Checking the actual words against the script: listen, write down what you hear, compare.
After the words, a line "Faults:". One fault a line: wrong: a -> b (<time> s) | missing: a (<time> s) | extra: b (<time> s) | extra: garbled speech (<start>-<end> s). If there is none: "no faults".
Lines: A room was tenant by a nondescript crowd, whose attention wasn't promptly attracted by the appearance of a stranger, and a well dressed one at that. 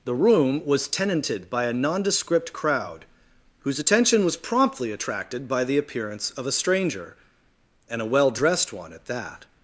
The room was tenanted by a nondescript crowd, whose attention was promptly attracted by the appearance of a stranger, and a well dressed one at that.
Faults:
wrong: A -> The (0.0 s)
wrong: tenant -> tenanted (0.9 s)
wrong: wasn't -> was (4.2 s)